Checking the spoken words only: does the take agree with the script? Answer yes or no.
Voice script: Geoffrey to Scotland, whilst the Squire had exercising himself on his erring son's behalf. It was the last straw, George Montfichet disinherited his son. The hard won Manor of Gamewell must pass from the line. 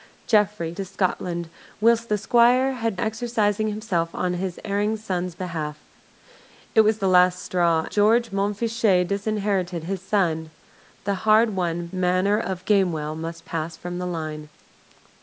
yes